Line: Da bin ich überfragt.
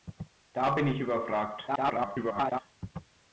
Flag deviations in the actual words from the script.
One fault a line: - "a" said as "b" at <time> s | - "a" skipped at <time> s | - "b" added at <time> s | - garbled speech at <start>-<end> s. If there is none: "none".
- garbled speech at 1.7-2.6 s